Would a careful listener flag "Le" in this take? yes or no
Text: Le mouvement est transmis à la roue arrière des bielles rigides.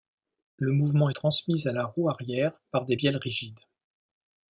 no